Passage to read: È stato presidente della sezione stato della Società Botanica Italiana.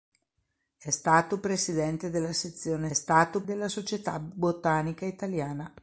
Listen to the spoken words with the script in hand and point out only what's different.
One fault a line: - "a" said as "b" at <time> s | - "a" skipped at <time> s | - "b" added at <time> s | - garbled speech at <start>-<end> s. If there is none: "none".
none